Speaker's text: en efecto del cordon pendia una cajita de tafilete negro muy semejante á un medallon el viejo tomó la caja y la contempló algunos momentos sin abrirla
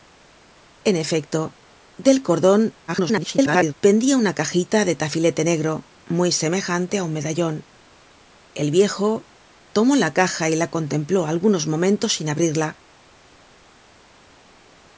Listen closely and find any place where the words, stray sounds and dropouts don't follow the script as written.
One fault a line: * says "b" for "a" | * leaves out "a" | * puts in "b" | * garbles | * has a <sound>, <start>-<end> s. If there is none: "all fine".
* garbles